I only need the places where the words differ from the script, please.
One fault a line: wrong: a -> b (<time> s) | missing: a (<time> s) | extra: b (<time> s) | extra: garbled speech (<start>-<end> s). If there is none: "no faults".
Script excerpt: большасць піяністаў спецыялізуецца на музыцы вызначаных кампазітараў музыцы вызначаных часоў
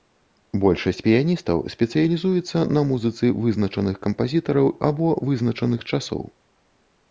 wrong: музыцы -> або (4.9 s)